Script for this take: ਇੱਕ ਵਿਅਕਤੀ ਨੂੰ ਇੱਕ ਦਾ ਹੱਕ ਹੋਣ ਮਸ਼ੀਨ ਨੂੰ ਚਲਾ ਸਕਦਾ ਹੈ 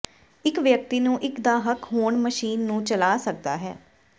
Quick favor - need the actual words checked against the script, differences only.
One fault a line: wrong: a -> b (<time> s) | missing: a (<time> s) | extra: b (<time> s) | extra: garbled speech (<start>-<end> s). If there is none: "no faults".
no faults